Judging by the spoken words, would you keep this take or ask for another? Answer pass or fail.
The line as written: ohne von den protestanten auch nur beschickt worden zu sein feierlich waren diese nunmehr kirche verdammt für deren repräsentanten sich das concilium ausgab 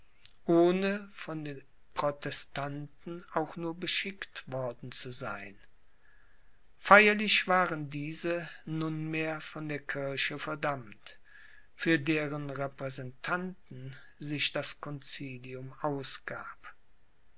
fail